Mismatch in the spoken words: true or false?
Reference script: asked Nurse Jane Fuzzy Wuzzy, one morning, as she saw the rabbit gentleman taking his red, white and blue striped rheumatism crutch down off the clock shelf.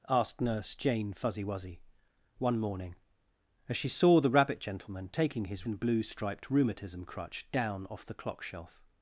true